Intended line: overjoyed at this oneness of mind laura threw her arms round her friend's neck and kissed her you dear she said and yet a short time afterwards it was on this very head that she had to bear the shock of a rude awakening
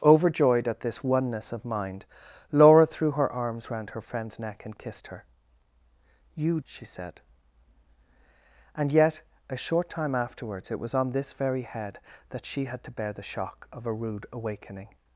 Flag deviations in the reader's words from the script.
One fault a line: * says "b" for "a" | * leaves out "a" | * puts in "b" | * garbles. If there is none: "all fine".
* leaves out "dear"